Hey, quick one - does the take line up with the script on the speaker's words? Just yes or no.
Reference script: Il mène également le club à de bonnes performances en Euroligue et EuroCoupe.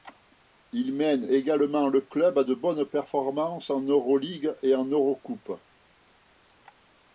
no